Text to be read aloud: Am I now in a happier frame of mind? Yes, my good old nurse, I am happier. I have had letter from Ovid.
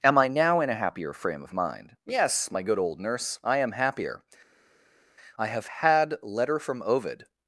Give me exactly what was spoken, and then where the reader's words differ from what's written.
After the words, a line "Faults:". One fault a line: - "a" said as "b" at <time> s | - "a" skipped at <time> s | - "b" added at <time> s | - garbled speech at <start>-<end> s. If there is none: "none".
Am I now in a happier frame of mind? Yes, my good old nurse, I am happier. I have had letter from Ovid.
Faults:
none